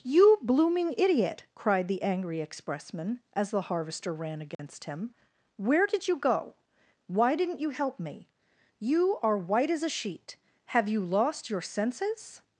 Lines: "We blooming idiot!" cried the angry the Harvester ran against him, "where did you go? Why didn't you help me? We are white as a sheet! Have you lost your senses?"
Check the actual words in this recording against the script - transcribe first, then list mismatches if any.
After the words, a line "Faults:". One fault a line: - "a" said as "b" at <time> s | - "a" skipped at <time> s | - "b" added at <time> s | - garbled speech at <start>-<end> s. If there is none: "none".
"You blooming idiot!" cried the angry expressman as the Harvester ran against him, "where did you go? Why didn't you help me? You are white as a sheet! Have you lost your senses?"
Faults:
- "We" said as "You" at 0.0 s
- "expressman as" added at 2.4 s
- "We" said as "You" at 8.8 s